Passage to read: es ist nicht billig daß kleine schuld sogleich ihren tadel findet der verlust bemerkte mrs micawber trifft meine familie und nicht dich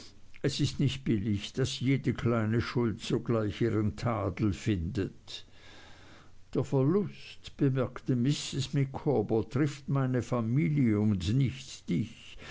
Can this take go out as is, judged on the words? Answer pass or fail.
fail